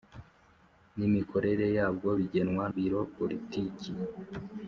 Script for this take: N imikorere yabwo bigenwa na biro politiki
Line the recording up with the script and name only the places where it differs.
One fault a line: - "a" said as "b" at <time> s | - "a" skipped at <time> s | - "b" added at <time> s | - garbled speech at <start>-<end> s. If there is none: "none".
- "na" skipped at 2.6 s